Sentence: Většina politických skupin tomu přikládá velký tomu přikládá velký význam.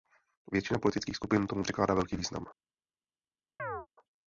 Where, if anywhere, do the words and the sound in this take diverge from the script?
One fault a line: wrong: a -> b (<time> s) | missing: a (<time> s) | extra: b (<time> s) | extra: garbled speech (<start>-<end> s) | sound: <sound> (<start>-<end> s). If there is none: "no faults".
missing: tomu přikládá velký (2.2 s)
sound: chirp (3.6-3.9 s)